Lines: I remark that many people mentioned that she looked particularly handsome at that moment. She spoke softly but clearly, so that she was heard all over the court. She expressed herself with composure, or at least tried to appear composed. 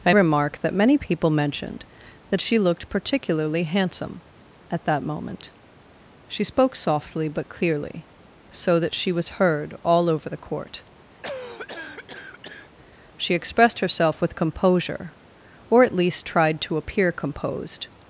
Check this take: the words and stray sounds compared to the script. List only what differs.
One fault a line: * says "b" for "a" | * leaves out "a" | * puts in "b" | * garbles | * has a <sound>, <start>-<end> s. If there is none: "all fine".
* has a cough, 11.2-12.7 s